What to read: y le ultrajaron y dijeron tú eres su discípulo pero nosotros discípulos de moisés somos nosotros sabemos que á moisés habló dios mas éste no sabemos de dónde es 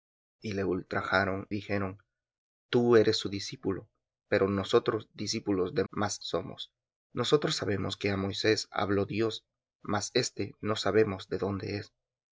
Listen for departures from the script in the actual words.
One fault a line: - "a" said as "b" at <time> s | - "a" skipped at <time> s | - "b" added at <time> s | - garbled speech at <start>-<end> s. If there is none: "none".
- "y" skipped at 1.5 s
- "moisés" said as "mas" at 5.9 s